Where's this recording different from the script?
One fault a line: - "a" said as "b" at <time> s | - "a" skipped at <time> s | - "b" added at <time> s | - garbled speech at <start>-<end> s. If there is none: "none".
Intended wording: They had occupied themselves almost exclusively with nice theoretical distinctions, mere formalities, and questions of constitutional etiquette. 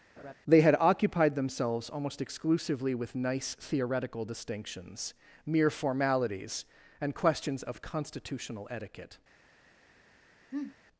none